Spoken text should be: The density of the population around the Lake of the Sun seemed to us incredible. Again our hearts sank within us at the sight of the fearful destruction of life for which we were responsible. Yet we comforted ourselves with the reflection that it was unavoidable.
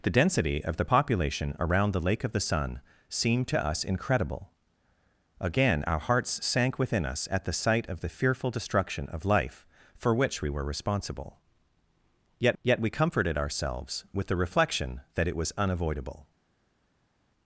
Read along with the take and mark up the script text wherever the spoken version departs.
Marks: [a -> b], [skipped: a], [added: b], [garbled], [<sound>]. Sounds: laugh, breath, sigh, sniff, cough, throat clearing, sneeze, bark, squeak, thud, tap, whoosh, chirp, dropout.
The density of the population around the Lake of the Sun seemed to us incredible. Again our hearts sank within us at the sight of the fearful destruction of life for which we were responsible. Yet [added: yet] we comforted ourselves with the reflection that it was unavoidable.